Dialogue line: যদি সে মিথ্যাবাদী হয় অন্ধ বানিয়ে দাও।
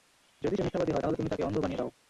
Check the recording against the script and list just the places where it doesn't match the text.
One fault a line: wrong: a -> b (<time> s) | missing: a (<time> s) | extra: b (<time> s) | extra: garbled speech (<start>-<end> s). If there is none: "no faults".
extra: তাহলে তুমি তাকে (1.0 s)